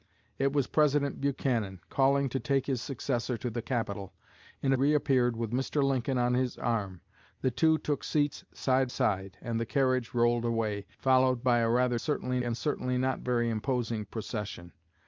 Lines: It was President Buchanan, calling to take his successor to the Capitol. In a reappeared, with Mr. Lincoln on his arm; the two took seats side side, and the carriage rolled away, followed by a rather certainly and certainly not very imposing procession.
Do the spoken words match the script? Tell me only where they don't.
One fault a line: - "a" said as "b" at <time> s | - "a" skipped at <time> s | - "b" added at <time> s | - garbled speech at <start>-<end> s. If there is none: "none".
none